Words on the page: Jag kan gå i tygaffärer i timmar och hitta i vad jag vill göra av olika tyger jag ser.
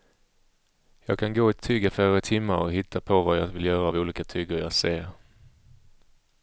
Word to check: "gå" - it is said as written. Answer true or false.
true